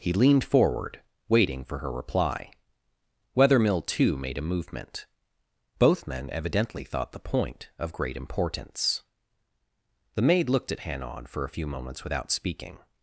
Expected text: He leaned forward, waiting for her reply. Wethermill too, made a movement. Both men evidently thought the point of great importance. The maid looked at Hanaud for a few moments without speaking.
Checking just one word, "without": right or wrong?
right